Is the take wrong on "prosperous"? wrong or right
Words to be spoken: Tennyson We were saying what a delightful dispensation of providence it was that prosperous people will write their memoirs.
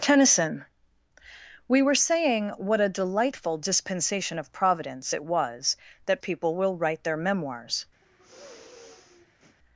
wrong